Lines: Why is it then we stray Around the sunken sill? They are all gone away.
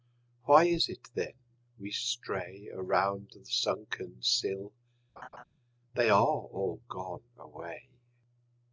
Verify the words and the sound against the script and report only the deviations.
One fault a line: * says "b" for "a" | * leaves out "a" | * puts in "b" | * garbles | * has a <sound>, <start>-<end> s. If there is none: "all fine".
* has a laugh, 5.2-5.4 s